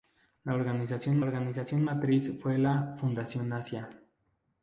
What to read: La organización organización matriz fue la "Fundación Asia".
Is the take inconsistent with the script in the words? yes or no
no